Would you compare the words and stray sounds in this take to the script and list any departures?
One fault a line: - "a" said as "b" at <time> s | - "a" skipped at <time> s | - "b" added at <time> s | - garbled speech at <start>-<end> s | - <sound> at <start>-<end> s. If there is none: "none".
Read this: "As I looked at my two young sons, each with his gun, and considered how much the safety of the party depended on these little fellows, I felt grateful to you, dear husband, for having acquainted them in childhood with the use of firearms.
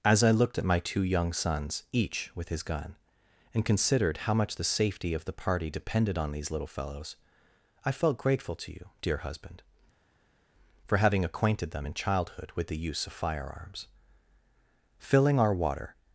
- "Filling our water" added at 15.0 s